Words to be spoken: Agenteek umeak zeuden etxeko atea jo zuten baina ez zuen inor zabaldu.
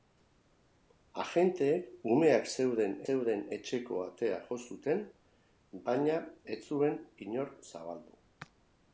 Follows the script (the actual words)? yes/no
no